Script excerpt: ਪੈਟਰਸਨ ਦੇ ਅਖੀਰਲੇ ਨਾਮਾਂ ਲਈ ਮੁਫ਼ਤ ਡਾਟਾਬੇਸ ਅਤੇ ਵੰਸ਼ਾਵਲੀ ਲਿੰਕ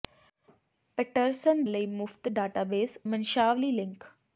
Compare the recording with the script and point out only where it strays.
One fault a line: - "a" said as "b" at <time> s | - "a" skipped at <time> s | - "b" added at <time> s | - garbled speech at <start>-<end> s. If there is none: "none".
- "ਦੇ ਅਖੀਰਲੇ ਨਾਮਾਂ" skipped at 1.6 s
- "ਅਤੇ" skipped at 3.0 s